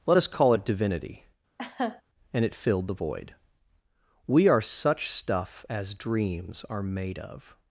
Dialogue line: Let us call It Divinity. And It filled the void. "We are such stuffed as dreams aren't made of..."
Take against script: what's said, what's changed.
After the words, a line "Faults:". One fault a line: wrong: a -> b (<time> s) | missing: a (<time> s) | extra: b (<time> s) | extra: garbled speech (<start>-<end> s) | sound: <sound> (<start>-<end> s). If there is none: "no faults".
Let us call It Divinity. And It filled the void. "We are such stuff as dreams are made of..."
Faults:
sound: laugh (1.6-2.0 s)
wrong: stuffed -> stuff (5.1 s)
wrong: aren't -> are (6.7 s)